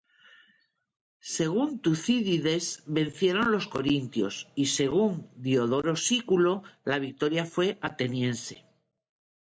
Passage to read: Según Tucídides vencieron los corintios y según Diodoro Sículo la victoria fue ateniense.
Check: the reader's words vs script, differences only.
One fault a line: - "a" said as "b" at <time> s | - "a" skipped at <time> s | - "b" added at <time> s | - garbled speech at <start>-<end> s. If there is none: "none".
none